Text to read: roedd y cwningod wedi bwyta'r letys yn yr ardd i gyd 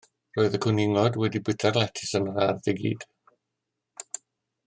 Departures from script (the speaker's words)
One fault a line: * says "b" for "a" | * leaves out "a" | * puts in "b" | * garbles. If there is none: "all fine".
all fine